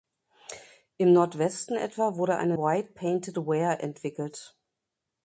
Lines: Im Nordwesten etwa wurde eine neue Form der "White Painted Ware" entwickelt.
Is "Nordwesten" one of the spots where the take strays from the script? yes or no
no